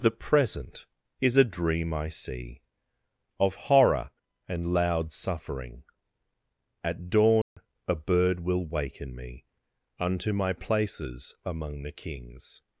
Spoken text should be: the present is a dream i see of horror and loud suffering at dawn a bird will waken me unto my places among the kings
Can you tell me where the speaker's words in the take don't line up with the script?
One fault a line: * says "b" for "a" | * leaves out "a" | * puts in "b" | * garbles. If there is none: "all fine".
all fine